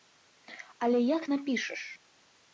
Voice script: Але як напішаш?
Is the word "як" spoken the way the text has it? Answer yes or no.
yes